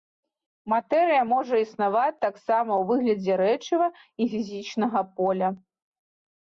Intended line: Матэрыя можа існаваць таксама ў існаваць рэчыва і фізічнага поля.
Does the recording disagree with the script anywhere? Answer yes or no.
yes